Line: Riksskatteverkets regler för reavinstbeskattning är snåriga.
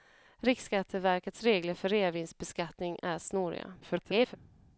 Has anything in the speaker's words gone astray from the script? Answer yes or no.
yes